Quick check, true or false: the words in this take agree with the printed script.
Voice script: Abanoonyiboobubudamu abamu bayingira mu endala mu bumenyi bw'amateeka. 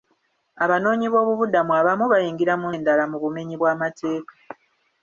true